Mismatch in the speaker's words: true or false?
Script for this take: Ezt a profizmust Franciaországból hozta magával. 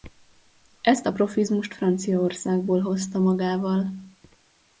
false